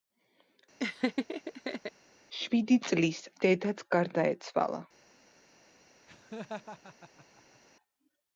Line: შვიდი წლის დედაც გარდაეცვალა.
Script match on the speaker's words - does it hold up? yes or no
yes